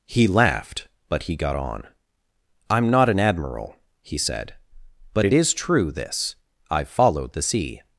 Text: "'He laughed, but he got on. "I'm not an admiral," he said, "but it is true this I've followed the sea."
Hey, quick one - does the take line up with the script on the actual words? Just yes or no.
yes